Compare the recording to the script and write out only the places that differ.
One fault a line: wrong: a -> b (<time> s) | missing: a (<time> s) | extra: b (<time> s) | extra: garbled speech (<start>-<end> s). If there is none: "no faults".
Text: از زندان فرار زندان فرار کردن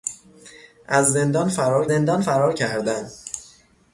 no faults